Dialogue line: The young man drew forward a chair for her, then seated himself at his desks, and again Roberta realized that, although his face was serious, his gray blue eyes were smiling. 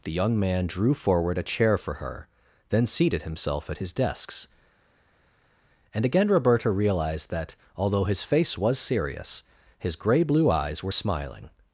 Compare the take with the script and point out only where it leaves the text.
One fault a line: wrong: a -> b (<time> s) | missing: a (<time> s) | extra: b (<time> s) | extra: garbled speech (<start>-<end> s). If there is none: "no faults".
no faults